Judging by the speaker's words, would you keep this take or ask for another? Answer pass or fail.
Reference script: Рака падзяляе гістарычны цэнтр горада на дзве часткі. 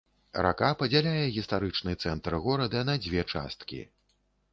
pass